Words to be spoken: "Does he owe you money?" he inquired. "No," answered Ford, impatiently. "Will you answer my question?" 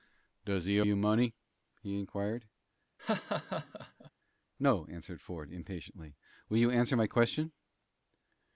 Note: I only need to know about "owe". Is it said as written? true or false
false